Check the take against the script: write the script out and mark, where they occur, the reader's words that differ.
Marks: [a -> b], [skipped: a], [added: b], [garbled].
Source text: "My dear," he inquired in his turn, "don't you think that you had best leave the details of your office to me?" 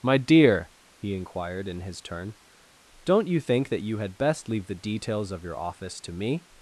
"My dear," he inquired in his turn, "don't you think that you had best leave the details of your office to me?"